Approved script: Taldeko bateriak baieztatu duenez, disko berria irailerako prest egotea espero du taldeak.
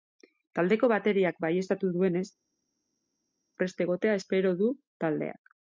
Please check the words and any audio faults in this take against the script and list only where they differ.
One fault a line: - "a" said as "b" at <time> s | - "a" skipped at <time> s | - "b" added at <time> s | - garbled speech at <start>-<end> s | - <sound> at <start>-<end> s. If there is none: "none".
- "disko berria irailerako" skipped at 2.2 s